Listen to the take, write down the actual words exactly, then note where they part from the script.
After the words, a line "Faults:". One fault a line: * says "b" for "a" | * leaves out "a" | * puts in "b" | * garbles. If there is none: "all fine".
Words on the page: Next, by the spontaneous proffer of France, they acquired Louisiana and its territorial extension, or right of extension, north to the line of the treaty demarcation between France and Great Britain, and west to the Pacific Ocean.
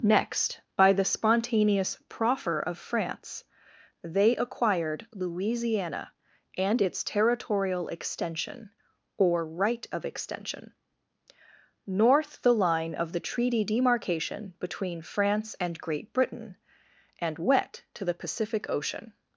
Next, by the spontaneous proffer of France, they acquired Louisiana and its territorial extension, or right of extension, north the line of the treaty demarcation between France and Great Britain, and wet to the Pacific Ocean.
Faults:
* leaves out "to"
* says "wet" for "west"